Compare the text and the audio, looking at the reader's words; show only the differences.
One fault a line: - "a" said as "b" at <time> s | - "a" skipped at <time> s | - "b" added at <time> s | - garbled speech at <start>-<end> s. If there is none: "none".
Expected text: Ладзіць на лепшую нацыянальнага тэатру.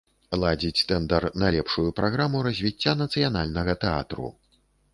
- "тэндар" added at 0.9 s
- "праграму развіцця" added at 2.0 s